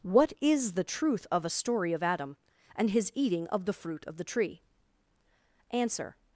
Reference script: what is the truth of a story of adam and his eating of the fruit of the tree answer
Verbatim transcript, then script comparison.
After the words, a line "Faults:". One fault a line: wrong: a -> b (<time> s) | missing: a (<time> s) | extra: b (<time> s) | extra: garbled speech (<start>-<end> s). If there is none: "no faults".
what is the truth of a story of adam and his eating of the fruit of the tree answer
Faults:
no faults